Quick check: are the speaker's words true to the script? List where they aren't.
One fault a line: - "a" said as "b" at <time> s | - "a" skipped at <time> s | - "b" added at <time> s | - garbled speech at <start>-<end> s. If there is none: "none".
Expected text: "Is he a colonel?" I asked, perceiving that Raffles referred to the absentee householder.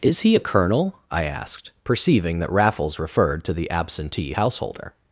none